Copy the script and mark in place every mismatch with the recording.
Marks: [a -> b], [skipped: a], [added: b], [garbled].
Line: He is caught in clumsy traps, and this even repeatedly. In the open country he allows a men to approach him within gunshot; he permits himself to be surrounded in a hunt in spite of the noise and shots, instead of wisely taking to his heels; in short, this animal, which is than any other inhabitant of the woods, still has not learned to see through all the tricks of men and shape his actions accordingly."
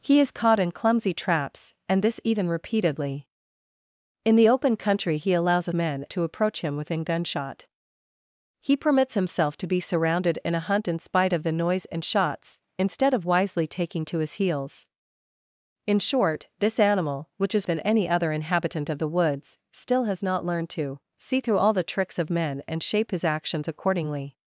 He is caught in clumsy traps, and this even repeatedly. In the open country he allows a men to approach him within gunshot; he permits himself to be surrounded in a hunt in spite of the noise and shots, instead of wisely taking to his heels; in short, this animal, which is than any other inhabitant of the woods, still has not learned to see through all the tricks of men and shape his actions accordingly."